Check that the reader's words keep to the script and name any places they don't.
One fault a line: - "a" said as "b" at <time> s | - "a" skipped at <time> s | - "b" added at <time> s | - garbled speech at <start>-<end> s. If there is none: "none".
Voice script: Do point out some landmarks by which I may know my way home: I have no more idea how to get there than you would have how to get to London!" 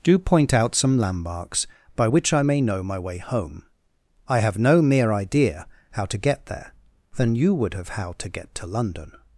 - "more" said as "mere" at 4.8 s